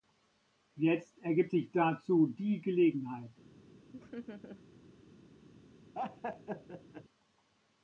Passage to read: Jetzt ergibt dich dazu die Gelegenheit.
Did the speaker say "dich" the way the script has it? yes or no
no